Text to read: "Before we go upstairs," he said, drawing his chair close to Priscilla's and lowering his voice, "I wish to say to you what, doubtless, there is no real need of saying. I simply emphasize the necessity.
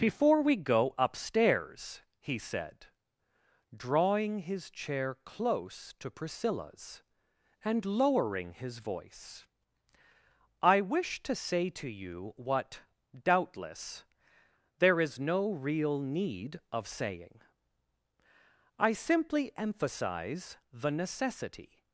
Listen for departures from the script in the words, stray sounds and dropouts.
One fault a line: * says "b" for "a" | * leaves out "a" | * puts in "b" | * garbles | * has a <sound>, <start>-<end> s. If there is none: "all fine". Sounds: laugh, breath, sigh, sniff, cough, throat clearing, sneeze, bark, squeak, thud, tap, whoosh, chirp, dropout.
all fine